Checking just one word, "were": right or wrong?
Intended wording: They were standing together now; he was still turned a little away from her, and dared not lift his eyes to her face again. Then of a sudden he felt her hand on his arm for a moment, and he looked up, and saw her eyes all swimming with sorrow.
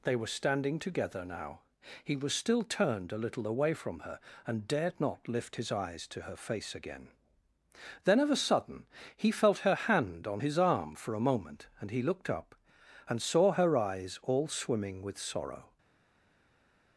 right